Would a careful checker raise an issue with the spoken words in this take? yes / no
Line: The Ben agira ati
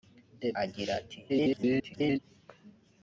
yes